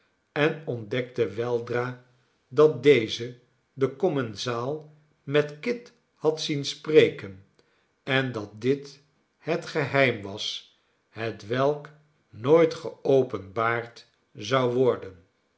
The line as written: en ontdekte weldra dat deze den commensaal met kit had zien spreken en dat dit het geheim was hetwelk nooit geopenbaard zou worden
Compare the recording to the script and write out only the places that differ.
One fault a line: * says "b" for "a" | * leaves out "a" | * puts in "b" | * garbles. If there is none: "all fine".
all fine